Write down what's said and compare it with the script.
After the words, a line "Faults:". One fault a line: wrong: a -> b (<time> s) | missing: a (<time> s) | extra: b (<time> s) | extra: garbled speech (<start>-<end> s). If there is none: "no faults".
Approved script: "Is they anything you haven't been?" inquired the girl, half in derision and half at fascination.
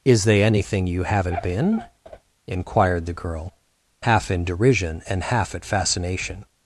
"Is they anything you haven't been?" inquired the girl, half in derision and half at fascination.
Faults:
no faults